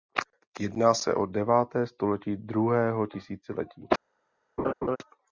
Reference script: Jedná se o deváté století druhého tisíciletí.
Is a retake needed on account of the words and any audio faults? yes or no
yes